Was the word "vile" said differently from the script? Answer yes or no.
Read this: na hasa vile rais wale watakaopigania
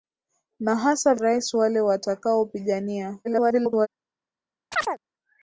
yes